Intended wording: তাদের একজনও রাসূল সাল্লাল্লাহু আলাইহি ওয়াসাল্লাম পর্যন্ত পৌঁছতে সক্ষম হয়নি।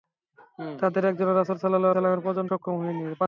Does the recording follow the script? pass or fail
fail